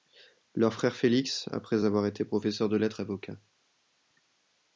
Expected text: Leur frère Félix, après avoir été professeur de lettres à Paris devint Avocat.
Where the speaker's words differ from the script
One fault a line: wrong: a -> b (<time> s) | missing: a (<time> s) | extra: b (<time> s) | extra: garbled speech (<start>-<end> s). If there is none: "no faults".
missing: à Paris devint (3.0 s)